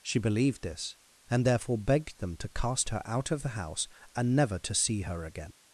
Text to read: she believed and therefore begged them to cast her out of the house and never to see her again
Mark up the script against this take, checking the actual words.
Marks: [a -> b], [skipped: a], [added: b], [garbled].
she believed [added: this] and therefore begged them to cast her out of the house and never to see her again